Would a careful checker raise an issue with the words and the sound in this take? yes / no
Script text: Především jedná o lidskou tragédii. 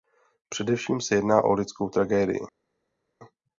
yes